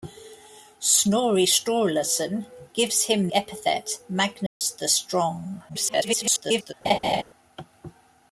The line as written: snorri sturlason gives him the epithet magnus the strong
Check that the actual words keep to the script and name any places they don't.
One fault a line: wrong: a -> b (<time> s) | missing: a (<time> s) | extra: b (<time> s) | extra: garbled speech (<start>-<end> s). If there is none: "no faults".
missing: the (3.3 s)
extra: garbled speech (5.7-6.7 s)